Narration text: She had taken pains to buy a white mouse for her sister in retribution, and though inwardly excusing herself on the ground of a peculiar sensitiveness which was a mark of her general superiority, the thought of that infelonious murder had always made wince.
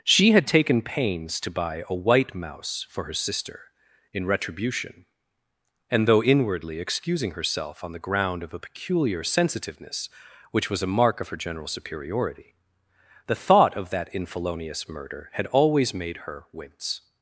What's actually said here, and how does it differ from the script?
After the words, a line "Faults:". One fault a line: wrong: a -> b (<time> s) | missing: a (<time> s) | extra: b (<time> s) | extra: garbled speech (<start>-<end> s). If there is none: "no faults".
She had taken pains to buy a white mouse for her sister in retribution, and though inwardly excusing herself on the ground of a peculiar sensitiveness which was a mark of her general superiority, the thought of that infelonious murder had always made her wince.
Faults:
extra: her (16.2 s)